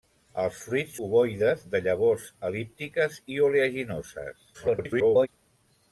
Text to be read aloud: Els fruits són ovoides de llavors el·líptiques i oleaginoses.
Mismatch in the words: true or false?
true